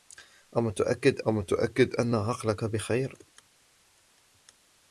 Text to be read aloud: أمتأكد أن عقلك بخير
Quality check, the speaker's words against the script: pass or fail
fail